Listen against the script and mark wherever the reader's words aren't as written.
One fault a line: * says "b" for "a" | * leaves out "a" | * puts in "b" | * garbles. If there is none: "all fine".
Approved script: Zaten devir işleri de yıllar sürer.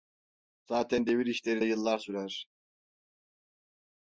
all fine